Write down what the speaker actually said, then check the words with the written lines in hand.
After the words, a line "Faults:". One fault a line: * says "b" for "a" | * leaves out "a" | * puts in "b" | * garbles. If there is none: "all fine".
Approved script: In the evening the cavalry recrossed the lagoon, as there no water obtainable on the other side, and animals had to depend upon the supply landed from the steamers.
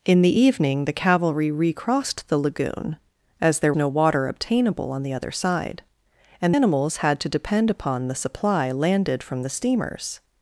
In the evening the cavalry recrossed the lagoon, as there no water obtainable on the other side, and animals had to depend upon the supply landed from the steamers.
Faults:
all fine